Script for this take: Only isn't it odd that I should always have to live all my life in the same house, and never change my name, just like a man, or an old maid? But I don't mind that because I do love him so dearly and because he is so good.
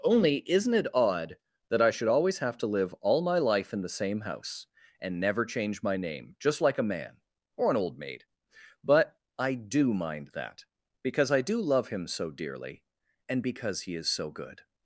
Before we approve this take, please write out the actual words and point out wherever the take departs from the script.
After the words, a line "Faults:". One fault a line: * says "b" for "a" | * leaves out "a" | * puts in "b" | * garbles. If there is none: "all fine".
Only isn't it odd that I should always have to live all my life in the same house, and never change my name, just like a man, or an old maid? But I do mind that because I do love him so dearly and because he is so good.
Faults:
* says "do" for "don't"